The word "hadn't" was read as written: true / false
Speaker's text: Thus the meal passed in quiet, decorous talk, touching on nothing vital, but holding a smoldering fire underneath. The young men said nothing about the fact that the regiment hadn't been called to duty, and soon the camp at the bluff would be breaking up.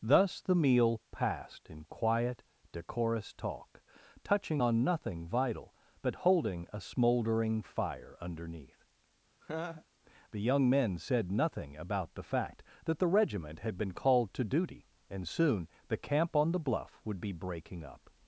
false